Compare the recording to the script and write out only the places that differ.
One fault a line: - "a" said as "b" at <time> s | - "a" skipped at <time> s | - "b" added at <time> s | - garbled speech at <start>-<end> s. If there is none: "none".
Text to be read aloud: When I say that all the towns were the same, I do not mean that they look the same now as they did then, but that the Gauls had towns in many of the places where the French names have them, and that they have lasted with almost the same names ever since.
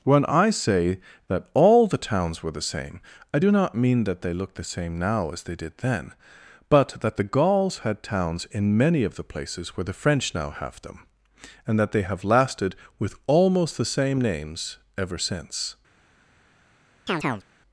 - "names" said as "now" at 10.3 s